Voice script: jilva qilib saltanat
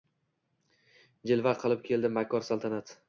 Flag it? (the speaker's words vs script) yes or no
yes